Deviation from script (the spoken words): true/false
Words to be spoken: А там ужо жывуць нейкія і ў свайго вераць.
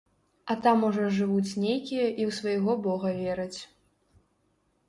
true